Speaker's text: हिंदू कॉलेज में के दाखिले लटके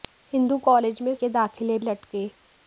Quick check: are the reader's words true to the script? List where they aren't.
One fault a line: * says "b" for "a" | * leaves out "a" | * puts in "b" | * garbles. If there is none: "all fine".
all fine